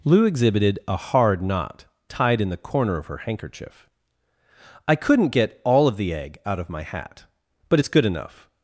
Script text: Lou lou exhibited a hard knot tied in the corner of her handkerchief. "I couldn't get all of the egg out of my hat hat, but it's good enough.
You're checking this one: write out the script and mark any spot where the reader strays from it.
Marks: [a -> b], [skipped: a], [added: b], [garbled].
Lou [skipped: lou] exhibited a hard knot tied in the corner of her handkerchief. "I couldn't get all of the egg out of my hat [skipped: hat,] but it's good enough.